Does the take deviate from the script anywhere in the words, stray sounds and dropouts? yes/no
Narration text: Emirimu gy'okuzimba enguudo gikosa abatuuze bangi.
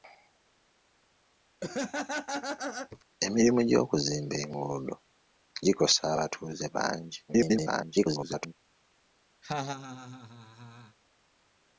yes